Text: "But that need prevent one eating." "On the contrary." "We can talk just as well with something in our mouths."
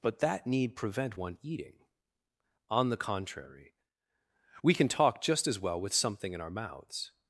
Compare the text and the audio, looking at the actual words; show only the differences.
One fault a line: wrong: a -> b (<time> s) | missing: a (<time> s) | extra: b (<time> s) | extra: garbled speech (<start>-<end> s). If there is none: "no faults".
no faults